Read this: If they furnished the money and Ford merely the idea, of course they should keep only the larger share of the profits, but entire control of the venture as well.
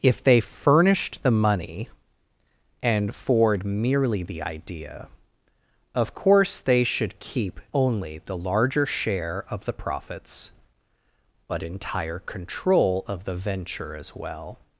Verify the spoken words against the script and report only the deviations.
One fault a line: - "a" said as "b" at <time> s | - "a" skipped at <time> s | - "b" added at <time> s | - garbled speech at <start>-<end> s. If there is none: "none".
none